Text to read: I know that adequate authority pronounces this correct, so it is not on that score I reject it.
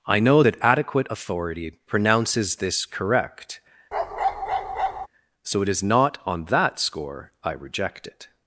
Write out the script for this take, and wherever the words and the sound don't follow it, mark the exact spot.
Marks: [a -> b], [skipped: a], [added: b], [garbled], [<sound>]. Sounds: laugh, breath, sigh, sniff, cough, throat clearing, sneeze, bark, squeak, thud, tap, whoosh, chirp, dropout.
I know that adequate authority pronounces this correct, [bark] so it is not on that score I reject it.